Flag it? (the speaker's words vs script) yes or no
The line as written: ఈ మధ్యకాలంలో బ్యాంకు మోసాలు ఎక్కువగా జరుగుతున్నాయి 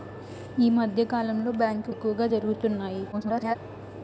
yes